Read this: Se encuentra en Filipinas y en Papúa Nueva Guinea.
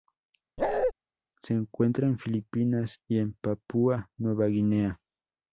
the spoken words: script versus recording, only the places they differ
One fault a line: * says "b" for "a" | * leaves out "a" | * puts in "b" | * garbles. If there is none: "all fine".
all fine